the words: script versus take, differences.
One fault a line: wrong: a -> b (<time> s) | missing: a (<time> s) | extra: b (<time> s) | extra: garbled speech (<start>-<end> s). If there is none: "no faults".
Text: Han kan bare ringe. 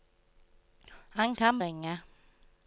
missing: bare (1.6 s)